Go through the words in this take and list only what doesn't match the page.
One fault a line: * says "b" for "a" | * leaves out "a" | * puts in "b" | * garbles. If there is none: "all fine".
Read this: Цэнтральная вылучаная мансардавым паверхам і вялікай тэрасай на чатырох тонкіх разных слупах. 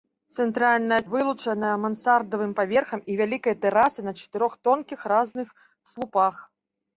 all fine